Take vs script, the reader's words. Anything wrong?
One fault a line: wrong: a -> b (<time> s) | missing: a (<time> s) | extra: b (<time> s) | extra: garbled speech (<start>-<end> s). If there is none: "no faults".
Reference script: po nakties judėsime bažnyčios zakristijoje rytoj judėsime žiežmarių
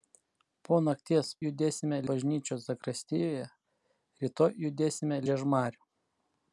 no faults